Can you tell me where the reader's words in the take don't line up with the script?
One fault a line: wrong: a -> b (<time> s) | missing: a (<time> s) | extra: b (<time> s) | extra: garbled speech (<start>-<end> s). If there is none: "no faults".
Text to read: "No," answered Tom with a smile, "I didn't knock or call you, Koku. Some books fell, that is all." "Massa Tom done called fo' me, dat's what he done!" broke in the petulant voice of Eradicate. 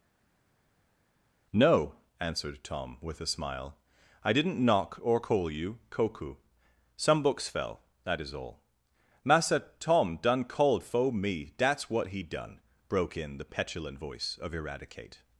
no faults